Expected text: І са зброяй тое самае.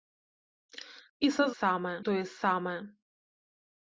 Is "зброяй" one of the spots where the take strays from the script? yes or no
yes